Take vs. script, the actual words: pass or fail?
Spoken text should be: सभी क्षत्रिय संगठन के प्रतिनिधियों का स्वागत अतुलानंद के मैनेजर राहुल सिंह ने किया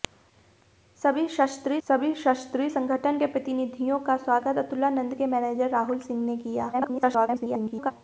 fail